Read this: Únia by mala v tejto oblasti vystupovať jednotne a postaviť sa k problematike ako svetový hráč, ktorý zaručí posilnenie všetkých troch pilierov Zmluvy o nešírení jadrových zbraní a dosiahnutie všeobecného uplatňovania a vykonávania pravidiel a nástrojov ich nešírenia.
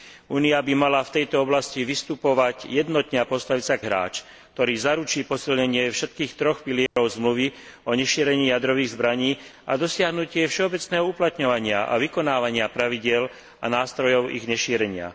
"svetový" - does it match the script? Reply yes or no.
no